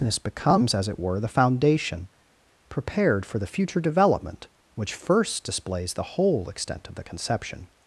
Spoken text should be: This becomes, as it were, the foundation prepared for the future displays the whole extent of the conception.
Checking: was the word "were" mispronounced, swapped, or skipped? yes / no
no